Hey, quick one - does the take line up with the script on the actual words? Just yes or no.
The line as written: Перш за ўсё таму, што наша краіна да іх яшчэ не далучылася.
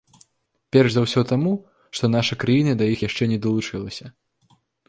yes